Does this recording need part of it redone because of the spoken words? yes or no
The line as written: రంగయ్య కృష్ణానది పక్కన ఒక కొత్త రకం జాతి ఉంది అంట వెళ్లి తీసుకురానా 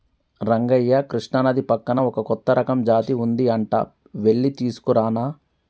no